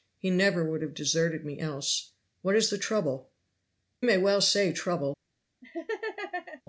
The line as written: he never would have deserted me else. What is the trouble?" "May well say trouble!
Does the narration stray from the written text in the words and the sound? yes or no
yes